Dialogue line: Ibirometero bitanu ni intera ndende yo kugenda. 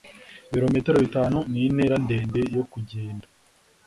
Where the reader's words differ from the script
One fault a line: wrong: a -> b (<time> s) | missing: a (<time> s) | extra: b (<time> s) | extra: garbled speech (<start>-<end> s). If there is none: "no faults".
no faults